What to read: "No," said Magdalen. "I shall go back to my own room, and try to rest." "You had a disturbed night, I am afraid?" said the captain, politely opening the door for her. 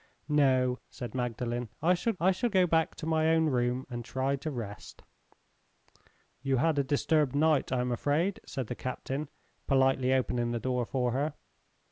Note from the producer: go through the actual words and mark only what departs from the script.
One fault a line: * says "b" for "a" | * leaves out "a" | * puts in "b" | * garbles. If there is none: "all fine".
* puts in "I shall"